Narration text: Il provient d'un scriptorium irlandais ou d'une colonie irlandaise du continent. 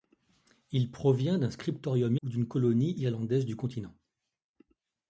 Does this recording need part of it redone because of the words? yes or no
yes